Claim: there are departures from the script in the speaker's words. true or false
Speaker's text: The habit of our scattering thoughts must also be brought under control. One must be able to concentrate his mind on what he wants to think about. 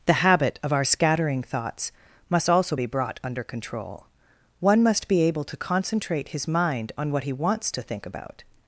false